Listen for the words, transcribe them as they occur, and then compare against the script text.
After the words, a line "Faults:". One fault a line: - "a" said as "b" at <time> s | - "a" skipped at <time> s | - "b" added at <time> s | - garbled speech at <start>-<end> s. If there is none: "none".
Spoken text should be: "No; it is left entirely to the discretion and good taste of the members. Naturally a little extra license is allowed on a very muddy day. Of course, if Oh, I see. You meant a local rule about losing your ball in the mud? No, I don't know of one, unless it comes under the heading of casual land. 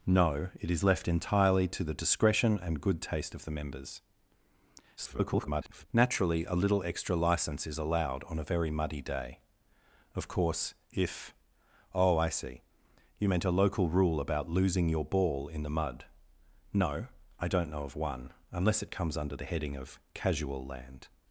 "No; it is left entirely to the discretion and good taste of the members. [garbled] Naturally a little extra license is allowed on a very muddy day. Of course, if Oh, I see. You meant a local rule about losing your ball in the mud? No, I don't know of one, unless it comes under the heading of casual land.
Faults:
- garbled speech at 5.0-5.9 s